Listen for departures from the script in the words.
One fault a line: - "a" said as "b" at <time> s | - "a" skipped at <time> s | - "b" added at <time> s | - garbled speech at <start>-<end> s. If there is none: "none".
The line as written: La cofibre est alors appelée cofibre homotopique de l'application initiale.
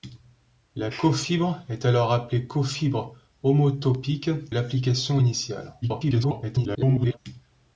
- "de" skipped at 4.3 s
- garbled speech at 5.8-7.2 s